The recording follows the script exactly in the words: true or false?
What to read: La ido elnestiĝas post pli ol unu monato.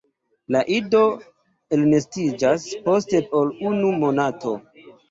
false